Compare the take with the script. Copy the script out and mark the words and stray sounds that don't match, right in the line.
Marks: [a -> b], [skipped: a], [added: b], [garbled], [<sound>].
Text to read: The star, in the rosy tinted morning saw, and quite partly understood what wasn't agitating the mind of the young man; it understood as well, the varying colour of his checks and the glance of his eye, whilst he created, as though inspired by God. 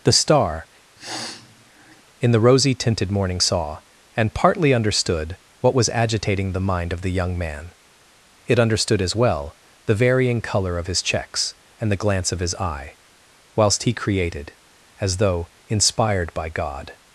The star, [sniff] in the rosy tinted morning saw, and [skipped: quite] partly understood what [wasn't -> was] agitating the mind of the young man; it understood as well, the varying colour of his checks and the glance of his eye, whilst he created, as though inspired by God.